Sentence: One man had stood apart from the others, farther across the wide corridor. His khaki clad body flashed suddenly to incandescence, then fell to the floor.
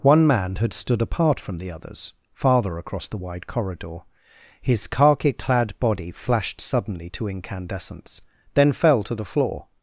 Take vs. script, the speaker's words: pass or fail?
pass